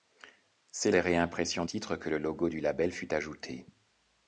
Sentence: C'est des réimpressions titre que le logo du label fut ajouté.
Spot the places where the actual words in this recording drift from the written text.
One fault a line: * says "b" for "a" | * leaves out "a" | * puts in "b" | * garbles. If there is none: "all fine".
all fine